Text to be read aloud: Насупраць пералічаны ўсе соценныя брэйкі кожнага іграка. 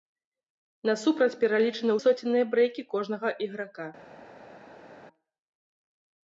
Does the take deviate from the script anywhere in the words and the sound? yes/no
yes